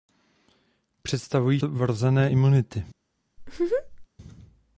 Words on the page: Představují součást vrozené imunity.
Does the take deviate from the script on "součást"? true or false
true